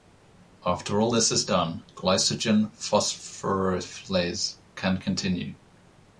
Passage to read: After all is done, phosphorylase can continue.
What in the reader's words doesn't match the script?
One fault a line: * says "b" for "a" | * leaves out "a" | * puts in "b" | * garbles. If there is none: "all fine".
* puts in "this"
* puts in "glycogen"